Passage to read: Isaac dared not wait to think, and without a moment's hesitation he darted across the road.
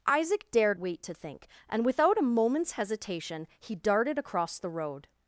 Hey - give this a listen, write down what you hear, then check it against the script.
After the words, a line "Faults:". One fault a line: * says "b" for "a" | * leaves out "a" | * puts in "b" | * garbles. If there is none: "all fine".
Isaac dared wait to think, and without a moment's hesitation he darted across the road.
Faults:
* leaves out "not"